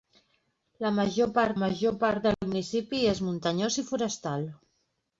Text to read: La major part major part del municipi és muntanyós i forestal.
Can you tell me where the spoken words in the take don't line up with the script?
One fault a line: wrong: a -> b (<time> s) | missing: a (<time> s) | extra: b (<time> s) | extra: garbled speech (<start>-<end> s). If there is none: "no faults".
no faults